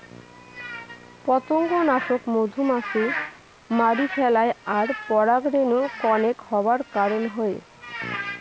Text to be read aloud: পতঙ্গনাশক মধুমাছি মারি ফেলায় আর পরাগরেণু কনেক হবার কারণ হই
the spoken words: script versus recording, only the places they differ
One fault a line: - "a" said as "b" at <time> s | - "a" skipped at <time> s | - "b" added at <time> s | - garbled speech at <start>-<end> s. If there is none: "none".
none